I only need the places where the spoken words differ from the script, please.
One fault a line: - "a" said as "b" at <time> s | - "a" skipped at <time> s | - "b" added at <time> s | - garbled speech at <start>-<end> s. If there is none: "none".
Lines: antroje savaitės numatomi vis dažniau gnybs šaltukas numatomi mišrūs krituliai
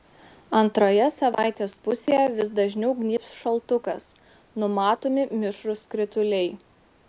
- "numatomi" said as "pusėje" at 1.9 s